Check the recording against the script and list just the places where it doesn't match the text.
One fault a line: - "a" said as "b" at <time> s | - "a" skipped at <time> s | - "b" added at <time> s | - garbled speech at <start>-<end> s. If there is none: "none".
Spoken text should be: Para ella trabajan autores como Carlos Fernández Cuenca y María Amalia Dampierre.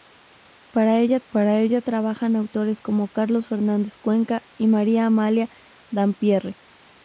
- "para ella" added at 1.3 s